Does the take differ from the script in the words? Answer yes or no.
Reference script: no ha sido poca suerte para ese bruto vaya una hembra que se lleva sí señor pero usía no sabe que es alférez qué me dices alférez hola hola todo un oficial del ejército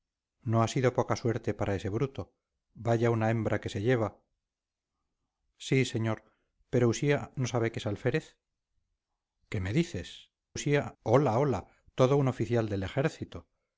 yes